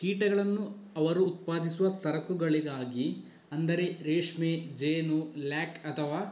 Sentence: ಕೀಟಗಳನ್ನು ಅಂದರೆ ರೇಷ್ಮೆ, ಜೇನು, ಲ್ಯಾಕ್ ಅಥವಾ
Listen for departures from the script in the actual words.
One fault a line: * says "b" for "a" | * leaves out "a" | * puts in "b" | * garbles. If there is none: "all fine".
* puts in "ಅವರು ಉತ್ಪಾದಿಸುವ ಸರಕುಗಳಿಗಾಗಿ"